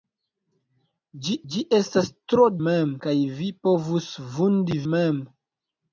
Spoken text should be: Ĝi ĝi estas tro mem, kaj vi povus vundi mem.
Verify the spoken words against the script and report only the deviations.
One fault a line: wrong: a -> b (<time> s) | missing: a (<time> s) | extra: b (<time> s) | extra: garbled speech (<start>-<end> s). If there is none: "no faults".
no faults